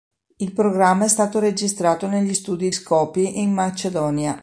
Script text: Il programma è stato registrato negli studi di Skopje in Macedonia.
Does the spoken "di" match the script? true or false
false